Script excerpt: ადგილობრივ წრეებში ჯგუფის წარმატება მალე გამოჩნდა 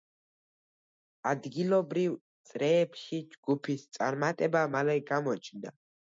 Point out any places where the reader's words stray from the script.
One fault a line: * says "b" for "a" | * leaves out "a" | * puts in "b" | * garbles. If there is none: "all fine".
all fine